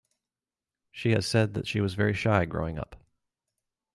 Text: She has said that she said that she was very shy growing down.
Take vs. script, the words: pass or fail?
fail